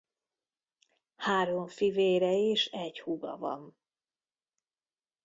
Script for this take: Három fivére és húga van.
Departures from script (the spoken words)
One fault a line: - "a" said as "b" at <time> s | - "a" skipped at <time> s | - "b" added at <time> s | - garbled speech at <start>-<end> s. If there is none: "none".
- "egy" added at 2.6 s